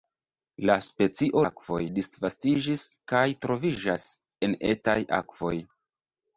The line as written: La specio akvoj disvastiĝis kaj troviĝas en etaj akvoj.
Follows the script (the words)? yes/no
yes